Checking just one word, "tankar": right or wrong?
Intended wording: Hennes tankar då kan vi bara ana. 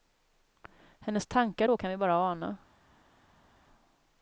right